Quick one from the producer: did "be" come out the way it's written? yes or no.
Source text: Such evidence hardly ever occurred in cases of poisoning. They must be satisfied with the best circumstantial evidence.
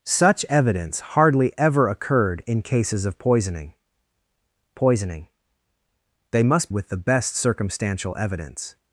no